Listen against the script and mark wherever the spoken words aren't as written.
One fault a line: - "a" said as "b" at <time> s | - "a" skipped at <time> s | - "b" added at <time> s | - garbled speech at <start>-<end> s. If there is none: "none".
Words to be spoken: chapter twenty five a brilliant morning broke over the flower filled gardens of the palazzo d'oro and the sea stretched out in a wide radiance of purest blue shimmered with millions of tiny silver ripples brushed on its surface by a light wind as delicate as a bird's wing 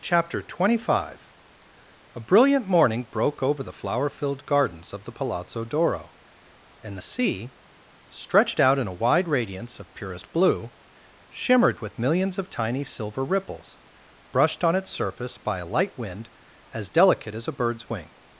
none